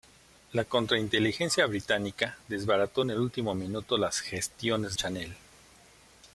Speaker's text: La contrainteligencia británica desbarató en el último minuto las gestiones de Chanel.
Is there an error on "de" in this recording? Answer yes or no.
yes